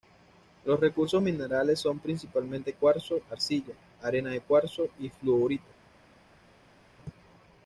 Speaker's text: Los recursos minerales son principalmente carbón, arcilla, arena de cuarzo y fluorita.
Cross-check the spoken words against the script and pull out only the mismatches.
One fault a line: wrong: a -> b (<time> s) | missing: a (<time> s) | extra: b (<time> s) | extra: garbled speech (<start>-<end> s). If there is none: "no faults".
wrong: carbón -> cuarzo (2.7 s)